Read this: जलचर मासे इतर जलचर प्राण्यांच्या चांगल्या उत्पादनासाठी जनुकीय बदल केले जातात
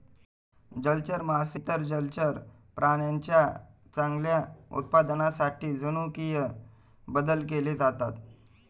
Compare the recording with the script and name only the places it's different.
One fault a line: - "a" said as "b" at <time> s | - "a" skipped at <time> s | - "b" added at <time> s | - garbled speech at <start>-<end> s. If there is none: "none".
none